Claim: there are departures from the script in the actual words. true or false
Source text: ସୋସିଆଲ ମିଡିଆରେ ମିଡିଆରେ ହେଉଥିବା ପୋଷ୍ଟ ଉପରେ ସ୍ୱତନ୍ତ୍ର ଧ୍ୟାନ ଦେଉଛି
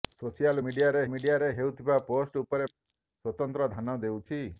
false